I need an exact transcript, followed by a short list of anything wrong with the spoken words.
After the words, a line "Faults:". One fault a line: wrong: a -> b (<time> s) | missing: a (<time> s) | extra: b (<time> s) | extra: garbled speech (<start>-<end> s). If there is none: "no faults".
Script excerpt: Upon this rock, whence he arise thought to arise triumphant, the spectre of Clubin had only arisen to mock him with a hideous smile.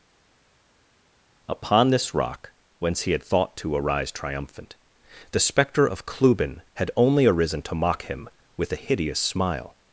Upon this rock, whence he had thought to arise triumphant, the spectre of Clubin had only arisen to mock him with a hideous smile.
Faults:
wrong: arise -> had (3.1 s)